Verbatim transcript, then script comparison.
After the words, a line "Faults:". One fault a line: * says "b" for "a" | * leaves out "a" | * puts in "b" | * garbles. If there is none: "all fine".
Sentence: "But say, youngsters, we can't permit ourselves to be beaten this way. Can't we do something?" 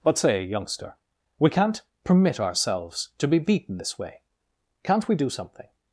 "But say, youngster, we can't permit ourselves to be beaten this way. Can't we do something?"
Faults:
* says "youngster" for "youngsters"